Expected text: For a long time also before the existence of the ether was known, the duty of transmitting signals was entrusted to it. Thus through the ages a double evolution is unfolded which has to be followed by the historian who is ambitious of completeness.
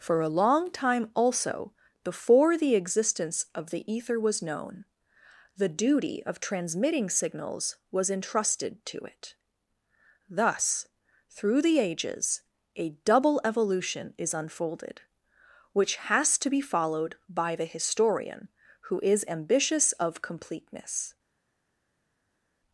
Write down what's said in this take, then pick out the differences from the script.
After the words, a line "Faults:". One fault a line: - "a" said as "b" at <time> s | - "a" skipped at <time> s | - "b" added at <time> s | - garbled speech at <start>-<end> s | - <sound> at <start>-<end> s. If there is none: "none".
For a long time also before the existence of the ether was known, the duty of transmitting signals was entrusted to it. Thus through the ages a double evolution is unfolded which has to be followed by the historian who is ambitious of completeness.
Faults:
none